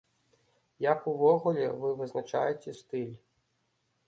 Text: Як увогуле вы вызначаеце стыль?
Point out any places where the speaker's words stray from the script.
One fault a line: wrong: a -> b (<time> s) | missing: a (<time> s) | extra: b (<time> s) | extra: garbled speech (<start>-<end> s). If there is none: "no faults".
no faults